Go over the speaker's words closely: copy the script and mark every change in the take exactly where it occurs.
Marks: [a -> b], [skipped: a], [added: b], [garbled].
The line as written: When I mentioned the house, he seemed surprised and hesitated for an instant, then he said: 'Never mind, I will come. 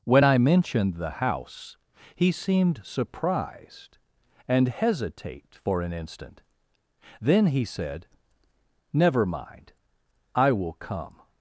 When I mentioned the house, he seemed surprised and [hesitated -> hesitate] for an instant, then he said: 'Never mind, I will come.